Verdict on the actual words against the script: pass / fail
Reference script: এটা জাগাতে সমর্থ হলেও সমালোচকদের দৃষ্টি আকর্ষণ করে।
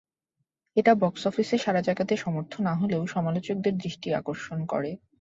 fail